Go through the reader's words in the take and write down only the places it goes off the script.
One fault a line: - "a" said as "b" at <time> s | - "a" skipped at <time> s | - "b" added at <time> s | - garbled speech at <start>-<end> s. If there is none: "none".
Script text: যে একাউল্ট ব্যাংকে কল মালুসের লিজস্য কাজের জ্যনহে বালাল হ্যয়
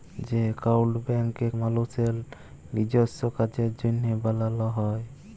- "কল" skipped at 1.5 s